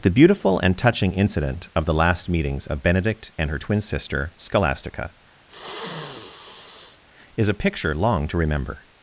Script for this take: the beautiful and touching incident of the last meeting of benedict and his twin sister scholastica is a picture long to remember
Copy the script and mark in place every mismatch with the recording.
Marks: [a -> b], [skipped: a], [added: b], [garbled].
the beautiful and touching incident of the last [meeting -> meetings] of benedict and [his -> her] twin sister scholastica is a picture long to remember